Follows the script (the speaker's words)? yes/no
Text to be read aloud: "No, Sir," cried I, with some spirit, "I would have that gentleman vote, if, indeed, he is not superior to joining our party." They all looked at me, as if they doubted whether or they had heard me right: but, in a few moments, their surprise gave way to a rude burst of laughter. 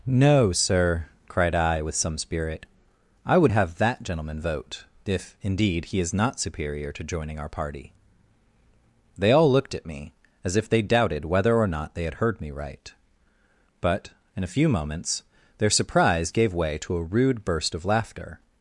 no